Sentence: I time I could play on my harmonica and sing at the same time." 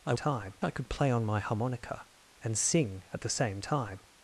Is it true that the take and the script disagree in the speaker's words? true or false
false